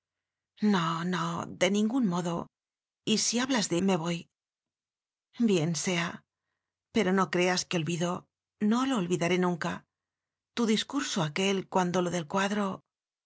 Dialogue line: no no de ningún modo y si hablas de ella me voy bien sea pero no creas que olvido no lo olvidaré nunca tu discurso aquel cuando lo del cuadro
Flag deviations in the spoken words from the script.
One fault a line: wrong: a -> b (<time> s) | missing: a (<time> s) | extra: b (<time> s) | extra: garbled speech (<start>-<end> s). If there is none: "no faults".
missing: ella (3.8 s)